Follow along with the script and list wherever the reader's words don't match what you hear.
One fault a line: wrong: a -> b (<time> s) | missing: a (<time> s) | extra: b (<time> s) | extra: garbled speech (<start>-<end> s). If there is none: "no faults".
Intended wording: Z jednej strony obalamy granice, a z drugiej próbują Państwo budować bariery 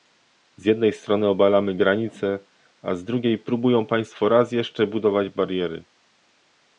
extra: raz jeszcze (4.3 s)